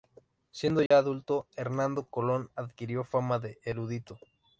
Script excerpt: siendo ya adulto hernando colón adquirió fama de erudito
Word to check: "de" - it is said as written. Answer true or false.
true